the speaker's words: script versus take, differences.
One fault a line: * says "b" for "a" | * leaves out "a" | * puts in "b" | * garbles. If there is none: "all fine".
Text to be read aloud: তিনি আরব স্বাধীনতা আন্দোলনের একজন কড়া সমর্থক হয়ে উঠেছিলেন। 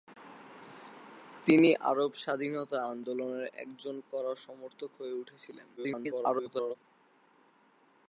* garbles